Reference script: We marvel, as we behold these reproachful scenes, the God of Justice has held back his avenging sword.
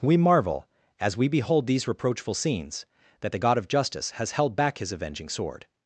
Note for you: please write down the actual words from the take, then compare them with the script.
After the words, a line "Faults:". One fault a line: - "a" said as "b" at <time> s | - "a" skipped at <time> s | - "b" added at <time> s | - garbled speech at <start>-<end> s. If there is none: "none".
We marvel, as we behold these reproachful scenes, that the God of Justice has held back his avenging sword.
Faults:
- "that" added at 3.2 s